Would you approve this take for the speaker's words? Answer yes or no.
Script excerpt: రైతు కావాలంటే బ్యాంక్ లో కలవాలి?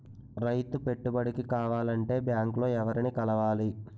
no